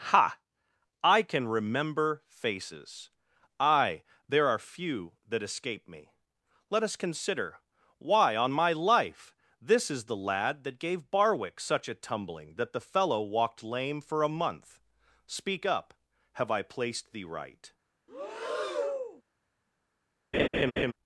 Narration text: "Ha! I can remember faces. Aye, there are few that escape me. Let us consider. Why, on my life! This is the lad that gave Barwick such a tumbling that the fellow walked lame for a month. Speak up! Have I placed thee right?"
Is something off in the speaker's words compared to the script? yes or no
no